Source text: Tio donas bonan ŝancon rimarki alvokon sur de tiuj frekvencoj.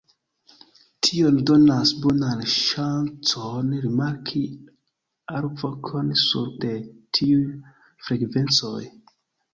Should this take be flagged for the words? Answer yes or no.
no